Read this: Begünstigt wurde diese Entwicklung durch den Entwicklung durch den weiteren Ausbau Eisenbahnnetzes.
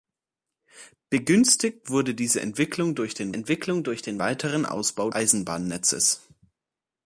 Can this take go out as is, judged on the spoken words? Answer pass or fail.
pass